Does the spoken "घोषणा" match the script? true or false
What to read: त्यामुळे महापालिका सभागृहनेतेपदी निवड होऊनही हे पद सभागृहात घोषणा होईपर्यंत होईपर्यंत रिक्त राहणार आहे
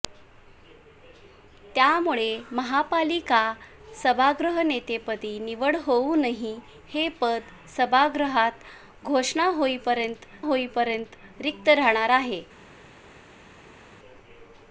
true